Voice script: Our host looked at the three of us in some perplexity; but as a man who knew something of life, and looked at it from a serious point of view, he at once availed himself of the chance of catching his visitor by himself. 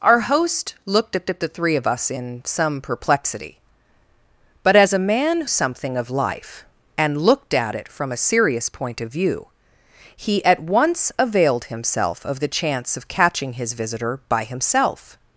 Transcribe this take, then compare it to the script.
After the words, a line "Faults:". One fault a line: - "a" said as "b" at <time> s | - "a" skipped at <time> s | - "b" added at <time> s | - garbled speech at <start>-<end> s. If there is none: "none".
Our host looked at at the three of us in some perplexity; but as a man something of life, and looked at it from a serious point of view, he at once availed himself of the chance of catching his visitor by himself.
Faults:
- "at" added at 1.3 s
- "who knew" skipped at 5.5 s